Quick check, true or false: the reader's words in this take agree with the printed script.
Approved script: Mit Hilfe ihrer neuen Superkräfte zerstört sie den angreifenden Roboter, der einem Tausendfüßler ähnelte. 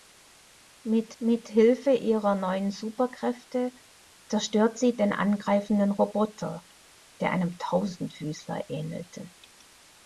false